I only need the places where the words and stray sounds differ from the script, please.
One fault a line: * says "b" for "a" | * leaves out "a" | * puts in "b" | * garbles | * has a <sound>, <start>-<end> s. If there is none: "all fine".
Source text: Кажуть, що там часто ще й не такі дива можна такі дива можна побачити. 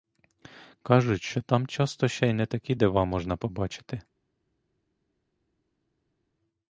* leaves out "такі дива можна"